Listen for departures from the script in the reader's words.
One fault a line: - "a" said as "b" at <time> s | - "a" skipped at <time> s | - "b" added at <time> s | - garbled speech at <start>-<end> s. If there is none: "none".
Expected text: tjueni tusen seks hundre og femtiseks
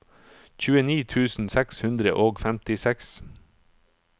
none